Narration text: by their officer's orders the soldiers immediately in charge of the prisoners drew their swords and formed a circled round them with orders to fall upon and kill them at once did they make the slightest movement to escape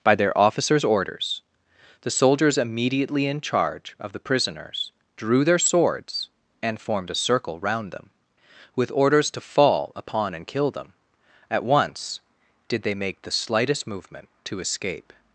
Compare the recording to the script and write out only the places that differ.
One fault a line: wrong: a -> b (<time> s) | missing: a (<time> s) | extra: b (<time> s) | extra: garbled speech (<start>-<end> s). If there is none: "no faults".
wrong: circled -> circle (7.1 s)